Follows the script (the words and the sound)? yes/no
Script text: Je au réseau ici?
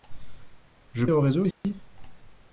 no